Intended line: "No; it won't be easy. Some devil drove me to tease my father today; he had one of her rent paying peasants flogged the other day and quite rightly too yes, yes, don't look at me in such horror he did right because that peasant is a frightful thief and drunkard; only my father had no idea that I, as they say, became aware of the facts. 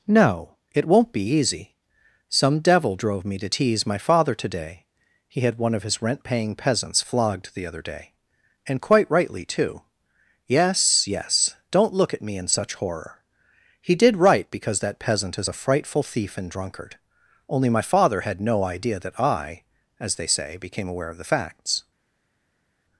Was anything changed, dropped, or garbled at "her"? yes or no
yes